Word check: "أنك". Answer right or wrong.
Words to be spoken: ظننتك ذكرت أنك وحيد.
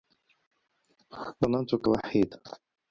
wrong